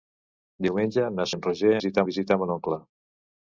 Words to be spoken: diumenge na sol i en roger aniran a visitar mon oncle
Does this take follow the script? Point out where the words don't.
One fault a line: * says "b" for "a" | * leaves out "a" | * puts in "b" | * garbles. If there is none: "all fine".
* leaves out "sol"
* says "visitar" for "aniran"